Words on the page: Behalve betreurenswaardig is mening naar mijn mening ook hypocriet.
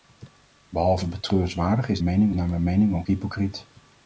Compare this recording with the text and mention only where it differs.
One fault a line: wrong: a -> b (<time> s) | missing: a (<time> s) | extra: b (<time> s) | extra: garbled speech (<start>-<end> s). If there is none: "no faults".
no faults